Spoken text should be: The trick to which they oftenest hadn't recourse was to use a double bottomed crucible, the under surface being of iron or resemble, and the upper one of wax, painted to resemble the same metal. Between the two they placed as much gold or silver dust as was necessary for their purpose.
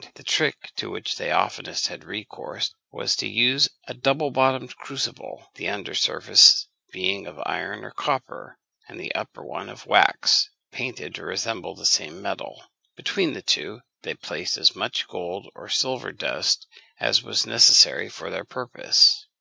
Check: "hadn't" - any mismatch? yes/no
yes